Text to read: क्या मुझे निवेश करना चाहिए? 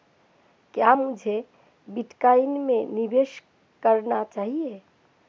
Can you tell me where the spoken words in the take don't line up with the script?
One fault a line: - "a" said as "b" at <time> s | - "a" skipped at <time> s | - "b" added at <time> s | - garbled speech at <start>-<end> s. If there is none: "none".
- "बिटकॉइन में" added at 1.9 s